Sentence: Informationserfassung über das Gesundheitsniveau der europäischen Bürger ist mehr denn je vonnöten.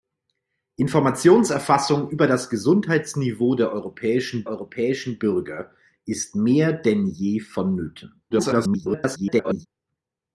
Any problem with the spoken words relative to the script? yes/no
yes